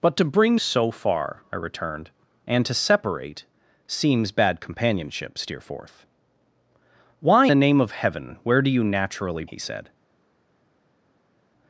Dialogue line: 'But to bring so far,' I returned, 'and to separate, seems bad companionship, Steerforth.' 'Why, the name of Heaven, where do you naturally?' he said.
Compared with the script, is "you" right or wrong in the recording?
right